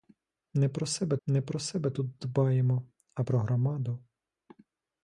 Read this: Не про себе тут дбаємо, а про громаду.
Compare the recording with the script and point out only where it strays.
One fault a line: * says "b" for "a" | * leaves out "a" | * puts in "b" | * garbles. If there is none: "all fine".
* puts in "не про себе"